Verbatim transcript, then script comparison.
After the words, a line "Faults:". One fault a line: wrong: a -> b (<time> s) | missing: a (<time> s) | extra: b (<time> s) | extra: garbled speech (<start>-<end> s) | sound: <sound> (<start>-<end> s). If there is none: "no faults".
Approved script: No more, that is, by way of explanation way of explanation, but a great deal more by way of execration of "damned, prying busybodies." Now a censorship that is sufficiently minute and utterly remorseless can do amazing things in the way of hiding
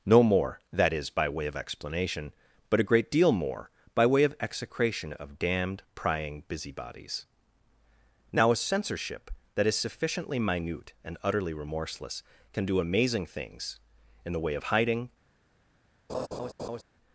No more, that is, by way of explanation, but a great deal more by way of execration of "damned, prying busybodies." Now a censorship that is sufficiently minute and utterly remorseless can do amazing things in the way of hiding
Faults:
missing: way of explanation (2.3 s)
sound: laugh (16.1-16.8 s)